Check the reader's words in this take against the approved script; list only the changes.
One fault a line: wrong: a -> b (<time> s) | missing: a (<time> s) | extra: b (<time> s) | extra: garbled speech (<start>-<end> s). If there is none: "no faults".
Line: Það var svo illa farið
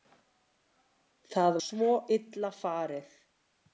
missing: var (1.6 s)